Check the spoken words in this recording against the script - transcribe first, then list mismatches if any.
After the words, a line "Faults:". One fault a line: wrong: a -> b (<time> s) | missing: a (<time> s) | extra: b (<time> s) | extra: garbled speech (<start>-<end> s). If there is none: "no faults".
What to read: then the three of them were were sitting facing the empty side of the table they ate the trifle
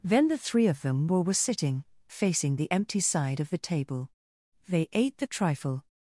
then the three of them were were sitting facing the empty side of the table they ate the trifle
Faults:
no faults